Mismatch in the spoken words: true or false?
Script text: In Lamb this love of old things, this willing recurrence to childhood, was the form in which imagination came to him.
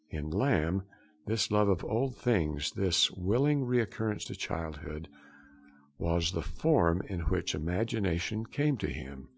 false